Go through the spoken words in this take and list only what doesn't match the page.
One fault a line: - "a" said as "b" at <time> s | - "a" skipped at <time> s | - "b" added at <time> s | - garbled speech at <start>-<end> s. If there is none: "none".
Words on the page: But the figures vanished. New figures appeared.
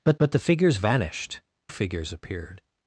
- "but" added at 0.2 s
- "New" skipped at 1.4 s